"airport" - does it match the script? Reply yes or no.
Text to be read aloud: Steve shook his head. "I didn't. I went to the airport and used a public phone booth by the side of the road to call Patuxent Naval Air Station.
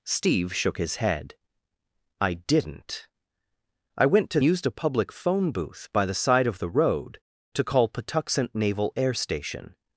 no